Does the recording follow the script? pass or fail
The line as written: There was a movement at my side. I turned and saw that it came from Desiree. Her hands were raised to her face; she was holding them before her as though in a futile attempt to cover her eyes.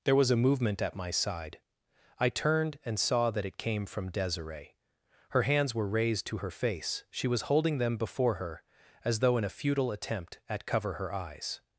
fail